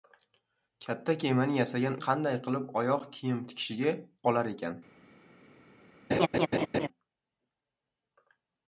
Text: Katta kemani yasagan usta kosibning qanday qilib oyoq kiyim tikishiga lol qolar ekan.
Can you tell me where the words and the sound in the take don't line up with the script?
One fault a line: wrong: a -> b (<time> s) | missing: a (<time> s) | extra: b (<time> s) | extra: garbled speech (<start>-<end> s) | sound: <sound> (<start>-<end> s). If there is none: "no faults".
missing: usta kosibning (2.0 s)
missing: lol (3.9 s)
sound: laugh (6.1-6.9 s)